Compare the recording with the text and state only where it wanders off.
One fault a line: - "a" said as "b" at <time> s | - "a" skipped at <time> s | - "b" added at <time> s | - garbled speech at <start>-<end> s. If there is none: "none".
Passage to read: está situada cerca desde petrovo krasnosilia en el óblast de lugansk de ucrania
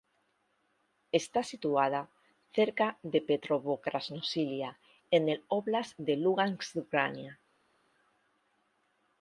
- "desde" said as "de" at 3.0 s